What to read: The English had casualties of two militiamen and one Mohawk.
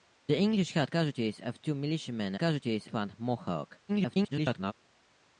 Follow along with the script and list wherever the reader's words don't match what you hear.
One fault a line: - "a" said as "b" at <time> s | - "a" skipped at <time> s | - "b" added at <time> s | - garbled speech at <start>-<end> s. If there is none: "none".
- "and" said as "casualties" at 2.4 s
- garbled speech at 3.9-4.7 s